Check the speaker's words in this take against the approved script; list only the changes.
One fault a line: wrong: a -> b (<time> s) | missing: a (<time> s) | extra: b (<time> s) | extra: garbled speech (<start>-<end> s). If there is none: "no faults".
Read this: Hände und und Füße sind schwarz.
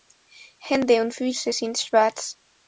missing: und (1.1 s)